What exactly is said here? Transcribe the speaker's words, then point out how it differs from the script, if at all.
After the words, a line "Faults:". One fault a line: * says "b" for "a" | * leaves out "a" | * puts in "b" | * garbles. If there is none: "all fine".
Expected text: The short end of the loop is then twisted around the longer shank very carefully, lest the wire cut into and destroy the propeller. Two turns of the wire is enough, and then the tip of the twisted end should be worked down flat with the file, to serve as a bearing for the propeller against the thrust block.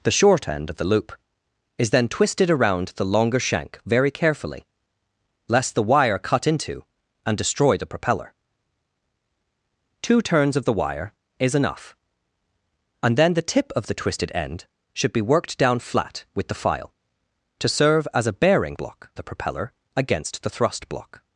The short end of the loop is then twisted around the longer shank very carefully, lest the wire cut into and destroy the propeller. Two turns of the wire is enough, and then the tip of the twisted end should be worked down flat with the file, to serve as a bearing block the propeller against the thrust block.
Faults:
* says "block" for "for"